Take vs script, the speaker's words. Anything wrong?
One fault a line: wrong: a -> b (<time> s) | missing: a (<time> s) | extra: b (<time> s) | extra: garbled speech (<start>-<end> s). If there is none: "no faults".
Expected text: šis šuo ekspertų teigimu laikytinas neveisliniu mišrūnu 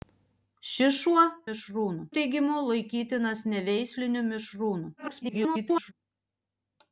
wrong: ekspertų -> mišrūnu (1.5 s)
extra: garbled speech (5.0-5.9 s)